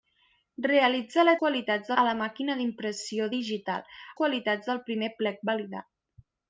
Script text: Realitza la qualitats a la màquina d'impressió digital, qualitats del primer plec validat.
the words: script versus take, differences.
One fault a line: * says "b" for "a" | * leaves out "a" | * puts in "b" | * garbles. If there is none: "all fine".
all fine